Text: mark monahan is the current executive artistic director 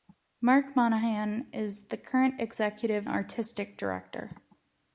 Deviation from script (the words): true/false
false